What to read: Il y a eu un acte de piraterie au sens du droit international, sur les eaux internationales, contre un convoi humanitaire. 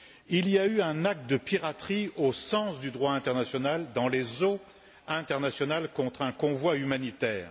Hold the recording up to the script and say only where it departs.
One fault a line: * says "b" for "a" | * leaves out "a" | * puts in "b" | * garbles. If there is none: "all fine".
* says "dans" for "sur"